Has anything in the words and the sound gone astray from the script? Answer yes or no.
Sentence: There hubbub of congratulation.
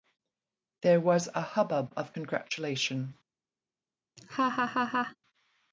yes